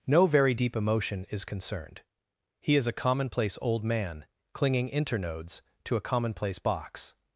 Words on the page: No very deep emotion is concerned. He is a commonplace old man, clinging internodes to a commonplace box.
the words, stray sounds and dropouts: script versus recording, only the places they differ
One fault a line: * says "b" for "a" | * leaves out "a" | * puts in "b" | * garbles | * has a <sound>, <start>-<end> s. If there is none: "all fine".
all fine